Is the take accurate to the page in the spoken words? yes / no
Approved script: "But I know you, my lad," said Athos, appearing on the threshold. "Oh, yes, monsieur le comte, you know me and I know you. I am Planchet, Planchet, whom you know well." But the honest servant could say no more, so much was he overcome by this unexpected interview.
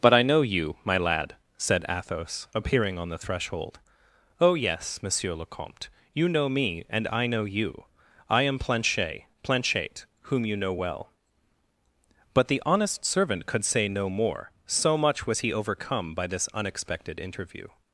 yes